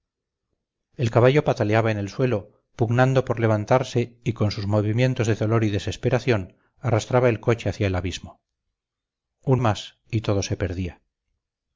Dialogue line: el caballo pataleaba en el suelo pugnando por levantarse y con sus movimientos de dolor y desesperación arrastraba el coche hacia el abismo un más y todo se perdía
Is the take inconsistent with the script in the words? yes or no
no